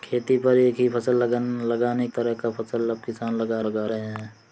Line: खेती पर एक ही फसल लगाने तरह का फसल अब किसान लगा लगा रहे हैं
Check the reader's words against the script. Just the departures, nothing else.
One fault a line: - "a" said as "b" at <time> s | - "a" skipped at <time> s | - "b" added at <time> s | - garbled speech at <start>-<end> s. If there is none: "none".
none